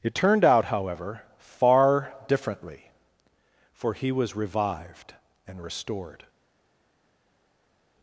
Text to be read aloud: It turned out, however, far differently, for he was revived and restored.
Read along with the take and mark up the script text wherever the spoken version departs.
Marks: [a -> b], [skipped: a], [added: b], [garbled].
It turned out, however, far differently, for he was revived and restored.